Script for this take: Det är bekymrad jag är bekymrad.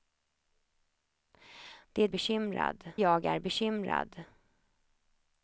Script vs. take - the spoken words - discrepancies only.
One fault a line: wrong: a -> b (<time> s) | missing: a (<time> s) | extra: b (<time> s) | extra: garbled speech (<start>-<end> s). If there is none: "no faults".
no faults